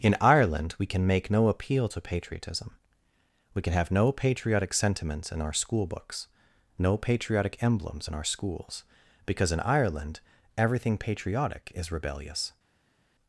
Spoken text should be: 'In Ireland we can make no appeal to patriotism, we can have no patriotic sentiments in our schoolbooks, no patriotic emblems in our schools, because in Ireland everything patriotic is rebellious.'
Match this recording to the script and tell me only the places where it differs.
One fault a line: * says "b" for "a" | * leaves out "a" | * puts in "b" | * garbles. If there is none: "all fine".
all fine